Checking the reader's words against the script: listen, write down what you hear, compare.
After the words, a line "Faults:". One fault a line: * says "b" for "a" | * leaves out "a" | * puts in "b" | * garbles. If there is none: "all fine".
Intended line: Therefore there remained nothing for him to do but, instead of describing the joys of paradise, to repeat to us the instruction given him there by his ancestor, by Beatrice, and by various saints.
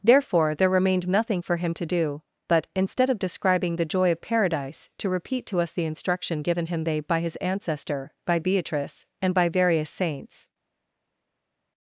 Therefore there remained nothing for him to do but, instead of describing the joy of paradise, to repeat to us the instruction given him they by his ancestor, by Beatrice, and by various saints.
Faults:
* says "joy" for "joys"
* says "they" for "there"